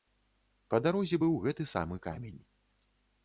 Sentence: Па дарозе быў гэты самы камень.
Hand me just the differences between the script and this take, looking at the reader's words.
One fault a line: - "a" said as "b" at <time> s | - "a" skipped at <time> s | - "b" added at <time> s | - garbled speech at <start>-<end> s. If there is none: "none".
none